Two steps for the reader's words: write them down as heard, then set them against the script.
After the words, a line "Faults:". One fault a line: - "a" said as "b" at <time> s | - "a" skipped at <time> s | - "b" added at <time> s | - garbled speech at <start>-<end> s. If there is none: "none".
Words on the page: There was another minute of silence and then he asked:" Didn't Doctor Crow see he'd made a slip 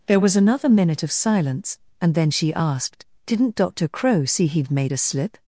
There was another minute of silence and then she asked:" Didn't Doctor Crow see he'd made a slip
Faults:
- "he" said as "she" at 2.3 s